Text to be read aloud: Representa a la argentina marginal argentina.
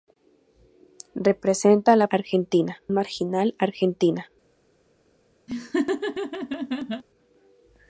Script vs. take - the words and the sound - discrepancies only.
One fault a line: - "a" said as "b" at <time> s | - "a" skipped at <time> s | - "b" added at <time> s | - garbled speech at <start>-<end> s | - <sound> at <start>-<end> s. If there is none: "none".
- laugh at 5.5-7.0 s